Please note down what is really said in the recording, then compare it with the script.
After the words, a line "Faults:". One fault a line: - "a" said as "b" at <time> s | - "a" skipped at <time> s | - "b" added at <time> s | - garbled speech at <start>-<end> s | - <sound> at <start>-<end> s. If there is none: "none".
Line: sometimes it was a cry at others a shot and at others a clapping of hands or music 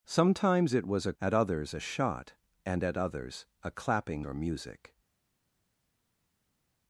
sometimes it was a at others a shot and at others a clapping or music
Faults:
- "cry" skipped at 1.1 s
- "of hands" skipped at 4.3 s